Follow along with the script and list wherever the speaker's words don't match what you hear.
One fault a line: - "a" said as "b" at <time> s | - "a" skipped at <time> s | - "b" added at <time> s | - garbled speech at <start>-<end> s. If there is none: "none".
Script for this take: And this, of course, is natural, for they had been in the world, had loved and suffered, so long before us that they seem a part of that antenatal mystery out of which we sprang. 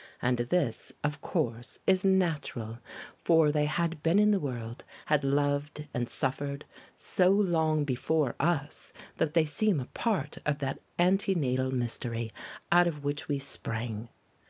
none